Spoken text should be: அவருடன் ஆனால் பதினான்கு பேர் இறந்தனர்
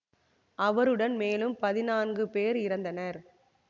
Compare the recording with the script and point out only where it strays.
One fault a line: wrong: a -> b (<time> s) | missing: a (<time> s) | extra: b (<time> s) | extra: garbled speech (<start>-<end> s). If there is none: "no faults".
wrong: ஆனால் -> மேலும் (1.1 s)